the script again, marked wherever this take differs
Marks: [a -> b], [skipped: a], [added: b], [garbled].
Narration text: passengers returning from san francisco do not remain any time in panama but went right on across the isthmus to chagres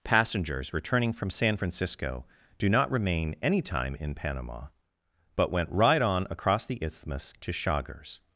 passengers returning from san francisco do not remain any time in panama but went right on across the isthmus to chagres